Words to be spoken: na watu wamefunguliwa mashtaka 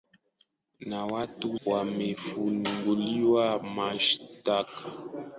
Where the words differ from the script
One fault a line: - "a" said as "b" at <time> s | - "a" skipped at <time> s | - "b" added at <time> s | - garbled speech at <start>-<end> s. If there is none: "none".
none